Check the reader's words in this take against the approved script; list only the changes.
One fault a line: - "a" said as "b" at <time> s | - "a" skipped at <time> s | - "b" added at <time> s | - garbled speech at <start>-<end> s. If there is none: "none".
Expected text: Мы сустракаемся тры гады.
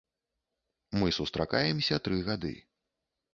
none